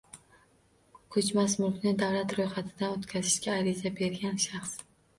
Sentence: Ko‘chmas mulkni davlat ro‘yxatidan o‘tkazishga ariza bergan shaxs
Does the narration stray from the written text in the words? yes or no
no